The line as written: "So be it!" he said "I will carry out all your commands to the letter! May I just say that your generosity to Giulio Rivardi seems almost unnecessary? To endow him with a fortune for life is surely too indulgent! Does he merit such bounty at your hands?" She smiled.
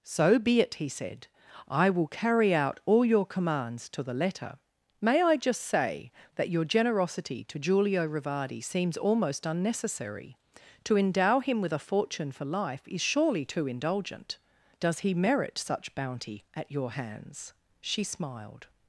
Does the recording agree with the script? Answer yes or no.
yes